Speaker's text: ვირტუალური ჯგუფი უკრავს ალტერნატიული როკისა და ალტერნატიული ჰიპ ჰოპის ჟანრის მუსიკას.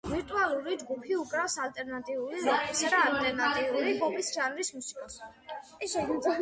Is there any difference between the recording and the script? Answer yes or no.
yes